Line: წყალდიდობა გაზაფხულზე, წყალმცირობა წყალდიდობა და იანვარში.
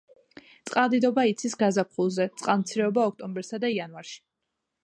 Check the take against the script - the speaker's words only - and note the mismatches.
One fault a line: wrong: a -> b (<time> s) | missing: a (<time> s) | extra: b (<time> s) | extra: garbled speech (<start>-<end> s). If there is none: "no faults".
extra: იცის (1.3 s)
wrong: წყალდიდობა -> ოქტომბერსა (3.1 s)